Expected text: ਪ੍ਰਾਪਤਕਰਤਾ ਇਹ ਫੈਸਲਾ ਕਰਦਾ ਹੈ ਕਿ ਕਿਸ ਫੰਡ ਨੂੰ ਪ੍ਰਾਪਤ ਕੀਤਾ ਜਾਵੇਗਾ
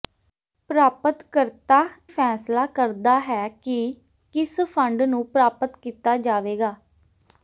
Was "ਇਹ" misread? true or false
true